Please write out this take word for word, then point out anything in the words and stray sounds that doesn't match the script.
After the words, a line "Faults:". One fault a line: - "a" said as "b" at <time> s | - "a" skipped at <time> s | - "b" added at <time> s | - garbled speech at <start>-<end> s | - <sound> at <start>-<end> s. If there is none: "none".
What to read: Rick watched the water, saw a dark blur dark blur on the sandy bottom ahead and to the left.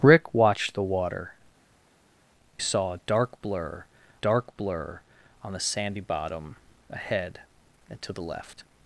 Rick watched the water, saw a dark blur dark blur on the sandy bottom ahead and to the left.
Faults:
none